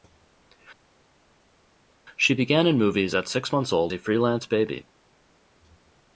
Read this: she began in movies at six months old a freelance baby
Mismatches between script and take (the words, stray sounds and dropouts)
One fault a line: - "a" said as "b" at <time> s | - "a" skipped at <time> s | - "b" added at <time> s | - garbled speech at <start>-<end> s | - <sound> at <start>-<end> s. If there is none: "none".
none